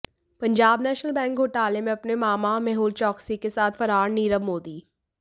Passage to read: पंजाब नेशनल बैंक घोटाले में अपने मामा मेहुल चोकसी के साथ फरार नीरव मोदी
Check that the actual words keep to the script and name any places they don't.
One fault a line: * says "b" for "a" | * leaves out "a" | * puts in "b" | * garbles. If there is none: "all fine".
all fine